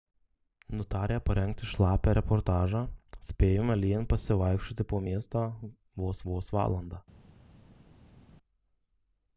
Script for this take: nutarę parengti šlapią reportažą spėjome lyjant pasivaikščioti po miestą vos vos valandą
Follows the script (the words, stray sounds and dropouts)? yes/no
yes